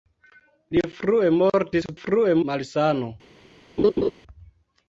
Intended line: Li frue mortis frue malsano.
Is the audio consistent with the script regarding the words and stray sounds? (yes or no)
no